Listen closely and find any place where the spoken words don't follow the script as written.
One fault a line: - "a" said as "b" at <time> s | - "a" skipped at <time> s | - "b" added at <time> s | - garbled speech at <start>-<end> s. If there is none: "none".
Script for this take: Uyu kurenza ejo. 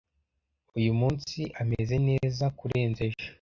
- "munsi ameze neza" added at 1.0 s